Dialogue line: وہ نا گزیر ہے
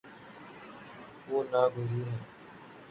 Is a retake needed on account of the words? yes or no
no